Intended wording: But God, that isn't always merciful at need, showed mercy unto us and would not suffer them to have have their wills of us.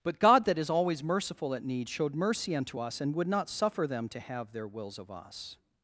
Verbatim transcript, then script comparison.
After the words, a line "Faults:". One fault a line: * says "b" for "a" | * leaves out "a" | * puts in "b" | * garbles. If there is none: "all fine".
But God, that is always merciful at need, showed mercy unto us and would not suffer them to have their wills of us.
Faults:
* says "is" for "isn't"
* leaves out "have"